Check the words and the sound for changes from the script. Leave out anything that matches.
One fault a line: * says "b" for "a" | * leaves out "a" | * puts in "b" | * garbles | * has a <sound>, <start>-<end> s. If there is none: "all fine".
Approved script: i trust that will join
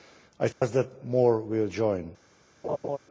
* has a dropout, 0.5-0.6 s
* puts in "more"
* has a laugh, 2.6-3.0 s